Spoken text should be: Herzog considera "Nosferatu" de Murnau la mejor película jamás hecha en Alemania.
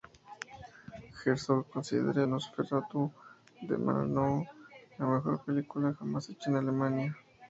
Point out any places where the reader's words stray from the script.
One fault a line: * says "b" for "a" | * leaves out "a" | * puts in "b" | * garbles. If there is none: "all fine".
all fine